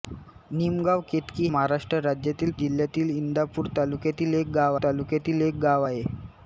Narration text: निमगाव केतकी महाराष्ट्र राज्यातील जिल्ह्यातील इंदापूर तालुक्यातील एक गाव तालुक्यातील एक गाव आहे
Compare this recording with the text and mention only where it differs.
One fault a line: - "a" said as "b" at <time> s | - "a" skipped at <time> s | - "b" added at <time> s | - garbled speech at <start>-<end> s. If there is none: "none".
none